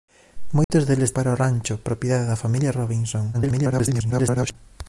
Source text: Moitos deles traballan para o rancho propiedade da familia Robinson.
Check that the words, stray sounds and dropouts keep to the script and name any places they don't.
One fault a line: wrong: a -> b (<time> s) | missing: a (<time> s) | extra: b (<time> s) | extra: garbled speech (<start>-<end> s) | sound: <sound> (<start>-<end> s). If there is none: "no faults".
sound: dropout (0.6-0.7 s)
missing: traballan (1.1 s)
extra: garbled speech (3.3-4.6 s)